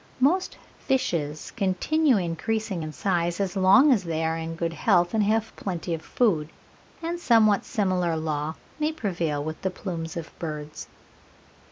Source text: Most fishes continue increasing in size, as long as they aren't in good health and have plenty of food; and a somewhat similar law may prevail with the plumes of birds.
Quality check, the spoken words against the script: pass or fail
fail